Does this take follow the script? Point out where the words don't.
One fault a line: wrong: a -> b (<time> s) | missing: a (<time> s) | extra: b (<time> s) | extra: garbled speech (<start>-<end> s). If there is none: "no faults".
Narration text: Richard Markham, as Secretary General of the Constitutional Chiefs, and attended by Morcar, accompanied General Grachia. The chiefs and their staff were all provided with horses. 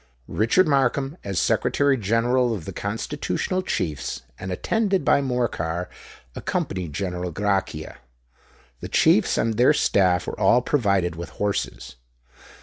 no faults